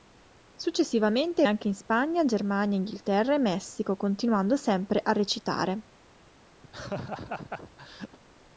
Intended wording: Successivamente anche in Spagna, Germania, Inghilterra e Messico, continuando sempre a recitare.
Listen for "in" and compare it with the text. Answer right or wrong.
right